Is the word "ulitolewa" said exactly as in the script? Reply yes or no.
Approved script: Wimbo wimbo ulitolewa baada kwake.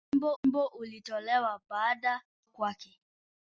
yes